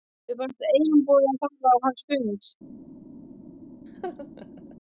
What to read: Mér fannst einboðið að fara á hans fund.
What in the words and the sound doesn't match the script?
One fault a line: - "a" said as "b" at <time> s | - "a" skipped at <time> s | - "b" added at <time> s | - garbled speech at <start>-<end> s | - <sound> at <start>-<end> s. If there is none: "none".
- laugh at 3.9-4.8 s